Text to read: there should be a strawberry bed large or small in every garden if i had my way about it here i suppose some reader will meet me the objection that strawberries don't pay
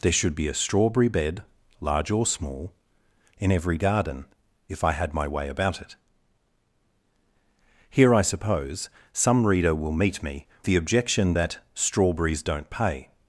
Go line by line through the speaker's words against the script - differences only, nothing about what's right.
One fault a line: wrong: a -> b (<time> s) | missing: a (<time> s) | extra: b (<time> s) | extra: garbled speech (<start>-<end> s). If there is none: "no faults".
no faults